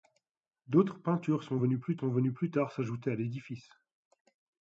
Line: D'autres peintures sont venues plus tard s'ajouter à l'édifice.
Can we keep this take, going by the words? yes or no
no